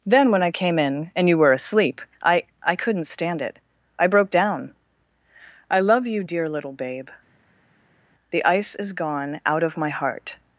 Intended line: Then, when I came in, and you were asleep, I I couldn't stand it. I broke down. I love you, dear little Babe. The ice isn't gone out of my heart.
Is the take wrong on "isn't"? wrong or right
wrong